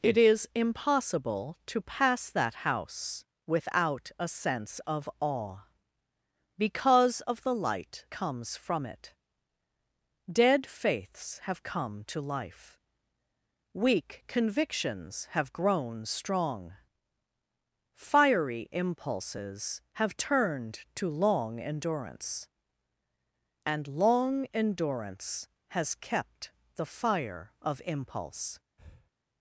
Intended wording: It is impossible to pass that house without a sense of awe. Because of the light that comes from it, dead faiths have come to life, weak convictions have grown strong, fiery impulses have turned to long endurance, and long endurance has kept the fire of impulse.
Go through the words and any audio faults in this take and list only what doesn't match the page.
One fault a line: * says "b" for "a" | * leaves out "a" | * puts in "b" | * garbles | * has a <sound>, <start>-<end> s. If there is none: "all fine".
* leaves out "that"
* has a breath, 28.8-29.1 s